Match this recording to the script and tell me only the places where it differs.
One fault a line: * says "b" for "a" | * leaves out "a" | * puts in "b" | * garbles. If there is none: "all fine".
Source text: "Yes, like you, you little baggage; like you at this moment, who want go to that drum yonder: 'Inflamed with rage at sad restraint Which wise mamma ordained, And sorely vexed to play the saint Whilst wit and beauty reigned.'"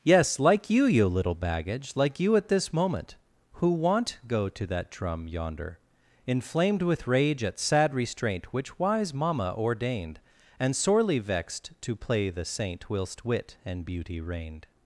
all fine